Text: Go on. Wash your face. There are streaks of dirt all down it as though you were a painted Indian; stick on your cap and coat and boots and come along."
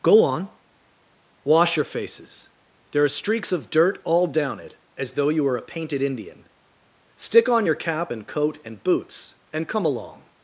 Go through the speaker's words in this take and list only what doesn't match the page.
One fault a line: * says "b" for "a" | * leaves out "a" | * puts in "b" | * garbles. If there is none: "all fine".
* says "faces" for "face"